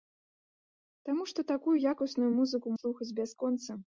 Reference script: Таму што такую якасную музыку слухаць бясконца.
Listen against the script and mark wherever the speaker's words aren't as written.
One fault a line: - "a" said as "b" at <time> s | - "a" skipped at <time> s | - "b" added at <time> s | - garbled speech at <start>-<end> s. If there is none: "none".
none